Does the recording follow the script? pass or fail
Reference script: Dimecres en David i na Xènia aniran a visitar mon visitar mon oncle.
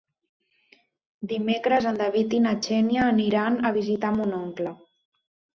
fail